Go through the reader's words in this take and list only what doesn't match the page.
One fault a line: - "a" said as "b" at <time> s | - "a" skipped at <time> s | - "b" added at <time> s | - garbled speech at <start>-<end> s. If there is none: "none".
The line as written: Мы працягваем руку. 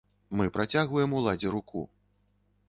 - "уладзе" added at 1.2 s